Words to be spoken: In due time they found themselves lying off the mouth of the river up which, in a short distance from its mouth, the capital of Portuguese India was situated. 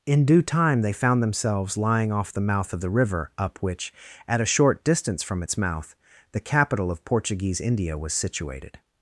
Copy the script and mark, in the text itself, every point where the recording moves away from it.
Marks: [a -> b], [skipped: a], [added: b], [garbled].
In due time they found themselves lying off the mouth of the river up which, [in -> at] a short distance from its mouth, the capital of Portuguese India was situated.